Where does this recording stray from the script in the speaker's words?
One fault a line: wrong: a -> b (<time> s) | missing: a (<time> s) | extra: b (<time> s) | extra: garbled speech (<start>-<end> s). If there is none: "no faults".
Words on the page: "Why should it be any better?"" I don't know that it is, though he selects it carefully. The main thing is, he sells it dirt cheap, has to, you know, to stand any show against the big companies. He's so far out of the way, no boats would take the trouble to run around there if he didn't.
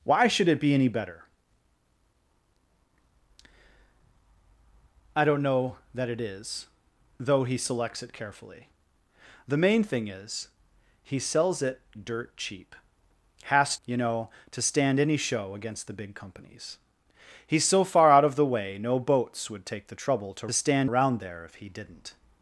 missing: to (13.8 s)
wrong: run -> stand (20.5 s)